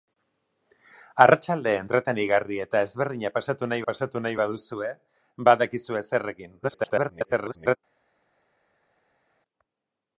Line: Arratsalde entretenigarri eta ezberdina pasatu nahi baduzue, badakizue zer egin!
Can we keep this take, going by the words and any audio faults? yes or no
no